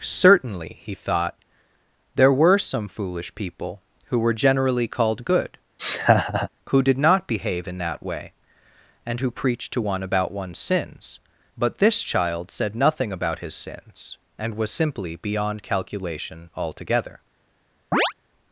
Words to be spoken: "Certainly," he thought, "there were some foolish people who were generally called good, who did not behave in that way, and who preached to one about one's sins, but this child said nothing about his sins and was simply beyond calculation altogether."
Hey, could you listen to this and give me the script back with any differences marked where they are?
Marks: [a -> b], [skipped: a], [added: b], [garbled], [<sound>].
"Certainly," he thought, "there were some foolish people who were generally called good, [laugh] who did not behave in that way, and who preached to one about one's sins, but this child said nothing about his sins and was simply beyond calculation altogether." [chirp]